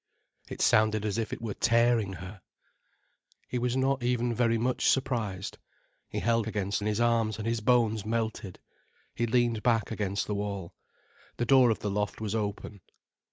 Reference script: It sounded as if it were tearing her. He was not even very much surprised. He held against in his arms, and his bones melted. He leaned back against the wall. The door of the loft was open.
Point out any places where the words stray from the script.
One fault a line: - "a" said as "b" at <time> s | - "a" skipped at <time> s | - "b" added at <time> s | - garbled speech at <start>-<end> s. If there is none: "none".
none